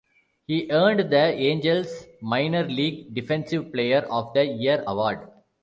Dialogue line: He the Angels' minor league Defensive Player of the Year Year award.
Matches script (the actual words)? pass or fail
fail